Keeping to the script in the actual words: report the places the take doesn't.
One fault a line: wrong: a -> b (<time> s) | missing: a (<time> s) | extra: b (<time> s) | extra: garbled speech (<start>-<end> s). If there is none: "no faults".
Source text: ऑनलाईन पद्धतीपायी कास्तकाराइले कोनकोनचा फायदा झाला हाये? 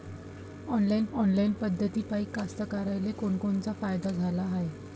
extra: ऑनलाईन (1.1 s)